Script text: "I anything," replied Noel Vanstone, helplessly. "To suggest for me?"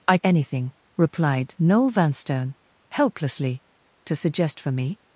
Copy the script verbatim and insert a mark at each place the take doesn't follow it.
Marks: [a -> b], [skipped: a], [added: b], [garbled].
"I anything," replied Noel Vanstone, helplessly. "To suggest for me?"